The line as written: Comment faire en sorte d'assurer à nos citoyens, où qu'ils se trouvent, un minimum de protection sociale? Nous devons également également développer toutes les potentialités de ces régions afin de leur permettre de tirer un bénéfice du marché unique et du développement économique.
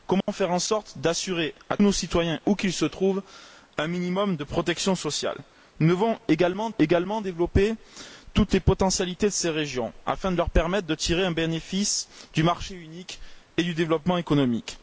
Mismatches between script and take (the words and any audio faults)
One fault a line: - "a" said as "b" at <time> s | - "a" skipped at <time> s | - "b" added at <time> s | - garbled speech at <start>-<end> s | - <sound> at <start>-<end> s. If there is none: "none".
- dropout at 0.2-0.3 s